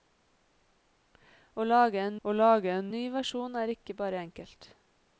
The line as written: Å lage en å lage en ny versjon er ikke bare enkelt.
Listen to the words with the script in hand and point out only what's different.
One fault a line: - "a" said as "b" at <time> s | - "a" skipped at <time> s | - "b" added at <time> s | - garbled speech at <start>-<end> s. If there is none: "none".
none